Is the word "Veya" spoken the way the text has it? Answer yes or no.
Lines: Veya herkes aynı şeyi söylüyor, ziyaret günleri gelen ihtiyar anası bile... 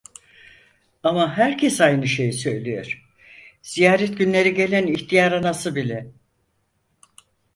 no